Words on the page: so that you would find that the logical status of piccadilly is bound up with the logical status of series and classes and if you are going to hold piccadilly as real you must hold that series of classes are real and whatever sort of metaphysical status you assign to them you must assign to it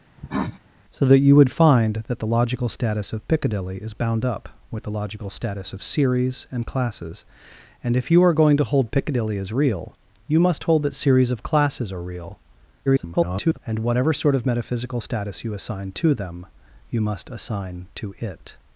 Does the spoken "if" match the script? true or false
true